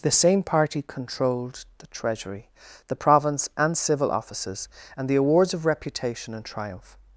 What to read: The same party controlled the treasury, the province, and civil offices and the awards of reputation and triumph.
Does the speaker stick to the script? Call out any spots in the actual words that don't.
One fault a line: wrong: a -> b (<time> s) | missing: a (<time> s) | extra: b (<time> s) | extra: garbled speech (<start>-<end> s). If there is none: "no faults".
no faults